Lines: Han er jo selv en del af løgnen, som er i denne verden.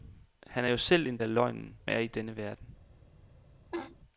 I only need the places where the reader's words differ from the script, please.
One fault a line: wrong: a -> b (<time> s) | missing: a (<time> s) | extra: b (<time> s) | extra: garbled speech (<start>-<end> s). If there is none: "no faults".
missing: del (1.2 s)
missing: som (1.8 s)